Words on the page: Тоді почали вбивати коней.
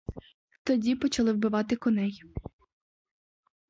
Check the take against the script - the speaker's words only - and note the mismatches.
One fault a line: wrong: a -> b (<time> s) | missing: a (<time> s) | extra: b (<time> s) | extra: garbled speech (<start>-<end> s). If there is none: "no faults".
no faults